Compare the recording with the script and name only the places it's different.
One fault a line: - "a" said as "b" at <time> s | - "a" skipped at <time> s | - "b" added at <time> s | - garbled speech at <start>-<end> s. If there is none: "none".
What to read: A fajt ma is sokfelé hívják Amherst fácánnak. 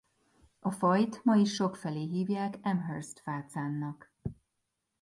none